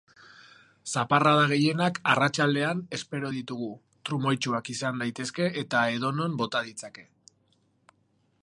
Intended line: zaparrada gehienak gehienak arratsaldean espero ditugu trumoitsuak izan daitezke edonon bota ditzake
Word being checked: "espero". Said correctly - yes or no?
yes